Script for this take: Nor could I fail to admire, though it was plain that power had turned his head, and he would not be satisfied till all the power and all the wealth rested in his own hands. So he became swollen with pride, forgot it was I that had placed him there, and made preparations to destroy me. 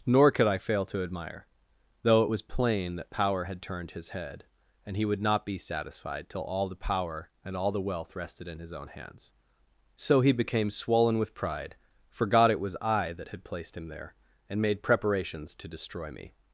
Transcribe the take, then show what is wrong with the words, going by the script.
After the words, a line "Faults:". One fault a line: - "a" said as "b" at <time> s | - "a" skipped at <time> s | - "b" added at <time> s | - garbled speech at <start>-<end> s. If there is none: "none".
Nor could I fail to admire, though it was plain that power had turned his head, and he would not be satisfied till all the power and all the wealth rested in his own hands. So he became swollen with pride, forgot it was I that had placed him there, and made preparations to destroy me.
Faults:
none